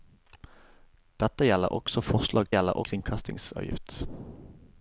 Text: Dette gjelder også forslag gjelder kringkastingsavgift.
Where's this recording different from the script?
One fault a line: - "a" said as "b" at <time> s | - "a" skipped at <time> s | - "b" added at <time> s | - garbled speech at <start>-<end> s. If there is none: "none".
none